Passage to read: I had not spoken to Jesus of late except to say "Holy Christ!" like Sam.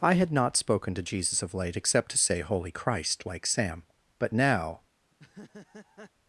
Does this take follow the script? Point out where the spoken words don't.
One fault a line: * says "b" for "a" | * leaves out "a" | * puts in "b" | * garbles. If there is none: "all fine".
* puts in "But now"